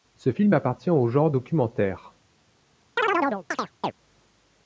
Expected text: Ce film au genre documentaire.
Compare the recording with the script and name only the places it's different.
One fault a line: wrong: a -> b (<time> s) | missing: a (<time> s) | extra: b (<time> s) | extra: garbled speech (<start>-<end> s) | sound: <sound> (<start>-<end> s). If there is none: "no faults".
extra: appartient (0.5 s)
sound: chirp (3.0-3.9 s)